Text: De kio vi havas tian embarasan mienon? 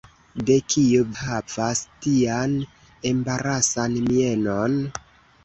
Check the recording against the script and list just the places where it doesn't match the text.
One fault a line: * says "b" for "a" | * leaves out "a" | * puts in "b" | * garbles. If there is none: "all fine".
* leaves out "vi"